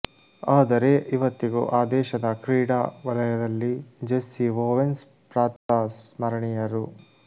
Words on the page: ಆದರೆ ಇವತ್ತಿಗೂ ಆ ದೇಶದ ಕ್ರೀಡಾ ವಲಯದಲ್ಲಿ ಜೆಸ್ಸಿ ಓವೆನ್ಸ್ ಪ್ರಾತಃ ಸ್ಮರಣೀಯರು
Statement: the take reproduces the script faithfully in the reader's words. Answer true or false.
true